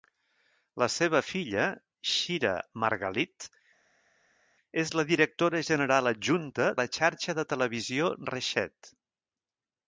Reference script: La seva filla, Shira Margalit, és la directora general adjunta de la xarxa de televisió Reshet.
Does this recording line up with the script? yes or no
no